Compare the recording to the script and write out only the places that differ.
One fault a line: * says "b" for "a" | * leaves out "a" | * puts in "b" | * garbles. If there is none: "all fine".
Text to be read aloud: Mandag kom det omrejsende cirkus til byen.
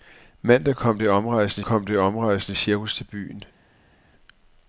* puts in "kom det omrejsende"